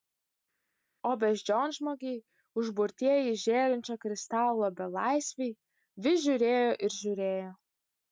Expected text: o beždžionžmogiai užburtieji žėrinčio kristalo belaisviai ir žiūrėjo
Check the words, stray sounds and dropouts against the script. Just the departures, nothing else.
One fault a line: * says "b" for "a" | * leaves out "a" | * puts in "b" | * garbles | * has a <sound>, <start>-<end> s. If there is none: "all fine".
* puts in "vis žiūrėjo"